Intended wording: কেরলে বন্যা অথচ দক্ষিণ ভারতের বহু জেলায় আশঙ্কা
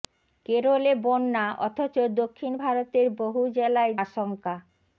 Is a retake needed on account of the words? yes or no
no